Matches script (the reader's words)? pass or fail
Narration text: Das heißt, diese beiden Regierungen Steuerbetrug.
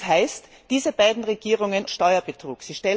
pass